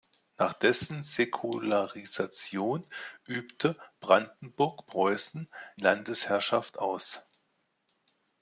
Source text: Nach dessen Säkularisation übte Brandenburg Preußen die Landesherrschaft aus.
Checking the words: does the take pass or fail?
fail